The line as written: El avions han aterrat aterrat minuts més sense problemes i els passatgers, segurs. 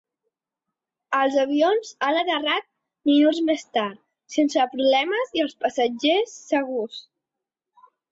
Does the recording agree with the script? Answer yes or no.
no